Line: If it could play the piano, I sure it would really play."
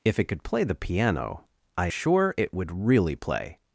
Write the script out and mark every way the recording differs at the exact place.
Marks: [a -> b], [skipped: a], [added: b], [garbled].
If it could play the piano, I sure it would really play."